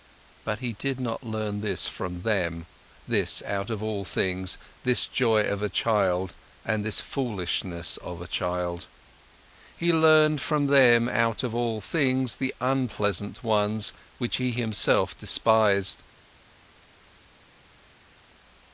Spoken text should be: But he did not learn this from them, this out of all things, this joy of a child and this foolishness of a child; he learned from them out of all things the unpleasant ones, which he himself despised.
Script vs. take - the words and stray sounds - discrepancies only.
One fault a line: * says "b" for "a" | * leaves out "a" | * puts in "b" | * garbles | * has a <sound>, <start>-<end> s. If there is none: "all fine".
all fine